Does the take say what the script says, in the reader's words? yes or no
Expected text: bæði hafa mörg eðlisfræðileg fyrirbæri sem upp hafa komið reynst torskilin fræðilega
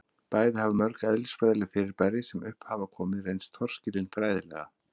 yes